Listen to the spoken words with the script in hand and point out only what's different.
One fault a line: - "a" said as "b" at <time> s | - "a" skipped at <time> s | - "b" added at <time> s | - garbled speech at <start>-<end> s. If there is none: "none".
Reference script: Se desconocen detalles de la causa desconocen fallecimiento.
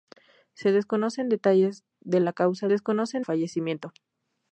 none